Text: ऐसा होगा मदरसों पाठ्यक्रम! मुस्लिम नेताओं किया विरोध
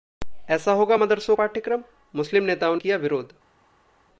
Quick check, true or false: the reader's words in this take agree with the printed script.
true